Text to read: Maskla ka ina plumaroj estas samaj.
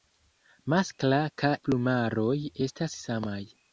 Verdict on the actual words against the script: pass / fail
fail